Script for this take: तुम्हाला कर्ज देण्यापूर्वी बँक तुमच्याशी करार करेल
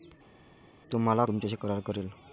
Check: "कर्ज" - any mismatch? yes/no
yes